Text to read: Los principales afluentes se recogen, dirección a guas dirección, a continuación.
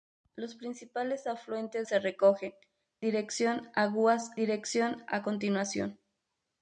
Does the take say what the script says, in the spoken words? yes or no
yes